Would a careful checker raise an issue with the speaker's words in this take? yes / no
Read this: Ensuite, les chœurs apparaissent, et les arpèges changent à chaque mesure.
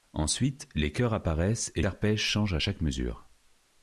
yes